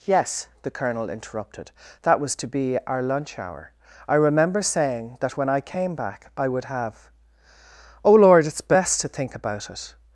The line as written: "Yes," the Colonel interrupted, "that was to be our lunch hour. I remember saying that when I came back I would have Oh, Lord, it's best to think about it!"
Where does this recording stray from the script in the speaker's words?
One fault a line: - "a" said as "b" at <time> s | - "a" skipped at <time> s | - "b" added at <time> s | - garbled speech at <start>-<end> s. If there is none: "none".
none